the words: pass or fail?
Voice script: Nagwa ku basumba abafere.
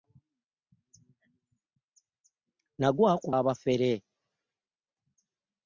fail